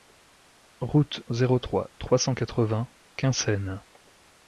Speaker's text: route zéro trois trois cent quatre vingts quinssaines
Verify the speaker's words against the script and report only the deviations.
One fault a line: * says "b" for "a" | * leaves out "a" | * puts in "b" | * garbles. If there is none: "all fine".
all fine